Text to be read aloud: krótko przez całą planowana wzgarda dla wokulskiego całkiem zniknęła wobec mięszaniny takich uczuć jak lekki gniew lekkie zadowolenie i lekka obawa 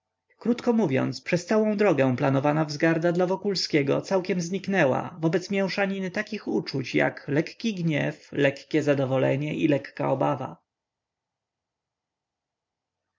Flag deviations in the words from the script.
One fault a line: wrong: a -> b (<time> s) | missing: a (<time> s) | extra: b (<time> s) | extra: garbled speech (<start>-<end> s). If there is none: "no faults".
extra: mówiąc (0.7 s)
extra: drogę (1.7 s)